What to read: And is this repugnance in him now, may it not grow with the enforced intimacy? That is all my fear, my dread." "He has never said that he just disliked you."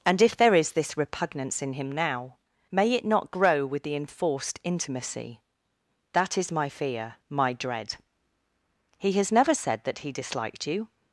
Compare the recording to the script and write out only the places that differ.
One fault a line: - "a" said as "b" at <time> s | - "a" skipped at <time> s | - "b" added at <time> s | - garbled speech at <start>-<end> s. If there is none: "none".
- "if there" added at 0.2 s
- "all" skipped at 6.5 s
- "just" skipped at 10.1 s